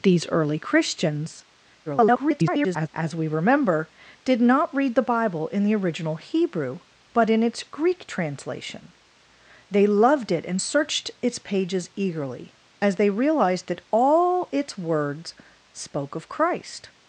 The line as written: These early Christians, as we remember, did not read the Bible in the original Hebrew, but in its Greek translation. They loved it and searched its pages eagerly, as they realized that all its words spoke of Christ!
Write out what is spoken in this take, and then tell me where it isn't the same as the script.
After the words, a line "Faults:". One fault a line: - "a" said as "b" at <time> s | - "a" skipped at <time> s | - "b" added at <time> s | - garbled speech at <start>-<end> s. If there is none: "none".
These early Christians, [garbled] as we remember, did not read the Bible in the original Hebrew, but in its Greek translation. They loved it and searched its pages eagerly, as they realized that all its words spoke of Christ!
Faults:
- garbled speech at 1.9-2.9 s